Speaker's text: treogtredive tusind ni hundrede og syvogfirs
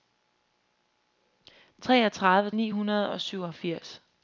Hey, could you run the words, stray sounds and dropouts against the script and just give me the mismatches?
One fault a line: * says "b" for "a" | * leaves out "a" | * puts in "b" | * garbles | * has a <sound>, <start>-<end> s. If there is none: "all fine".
* leaves out "tusind"